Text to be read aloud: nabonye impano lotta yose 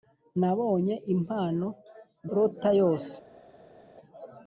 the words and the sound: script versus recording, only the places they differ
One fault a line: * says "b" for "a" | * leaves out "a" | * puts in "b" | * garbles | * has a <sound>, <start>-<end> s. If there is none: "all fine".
all fine